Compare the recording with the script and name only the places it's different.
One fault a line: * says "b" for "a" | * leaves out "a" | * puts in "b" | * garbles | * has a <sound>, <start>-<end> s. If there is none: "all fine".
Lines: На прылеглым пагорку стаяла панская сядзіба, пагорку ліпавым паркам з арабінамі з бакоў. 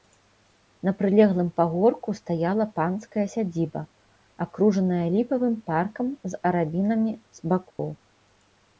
* says "акружаная" for "пагорку"
* has a dropout, 7.7-7.8 s